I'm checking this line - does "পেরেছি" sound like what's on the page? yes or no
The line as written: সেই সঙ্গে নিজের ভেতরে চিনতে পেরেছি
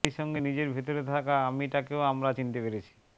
yes